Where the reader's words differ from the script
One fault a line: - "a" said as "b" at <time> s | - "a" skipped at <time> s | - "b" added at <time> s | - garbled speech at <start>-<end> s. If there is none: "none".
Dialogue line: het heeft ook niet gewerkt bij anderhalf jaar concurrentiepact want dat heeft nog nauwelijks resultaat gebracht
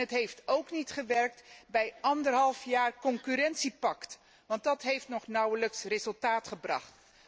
none